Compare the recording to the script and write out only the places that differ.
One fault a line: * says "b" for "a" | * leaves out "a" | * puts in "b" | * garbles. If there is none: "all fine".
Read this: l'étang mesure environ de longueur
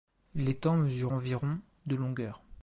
all fine